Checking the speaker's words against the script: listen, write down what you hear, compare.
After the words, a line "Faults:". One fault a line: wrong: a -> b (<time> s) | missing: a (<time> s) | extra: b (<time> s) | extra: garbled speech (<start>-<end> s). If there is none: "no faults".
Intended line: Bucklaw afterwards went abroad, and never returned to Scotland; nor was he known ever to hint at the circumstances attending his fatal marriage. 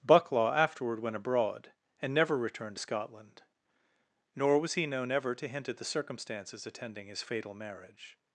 Bucklaw afterward went abroad, and never returned to Scotland; nor was he known ever to hint at the circumstances attending his fatal marriage.
Faults:
wrong: afterwards -> afterward (0.5 s)